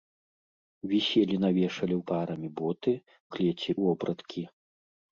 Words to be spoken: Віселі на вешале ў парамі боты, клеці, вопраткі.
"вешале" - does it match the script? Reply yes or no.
yes